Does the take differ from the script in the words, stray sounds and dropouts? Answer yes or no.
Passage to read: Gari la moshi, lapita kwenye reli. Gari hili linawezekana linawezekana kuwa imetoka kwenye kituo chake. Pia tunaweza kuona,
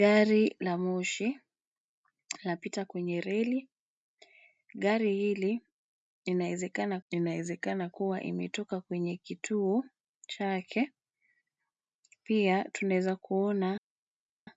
no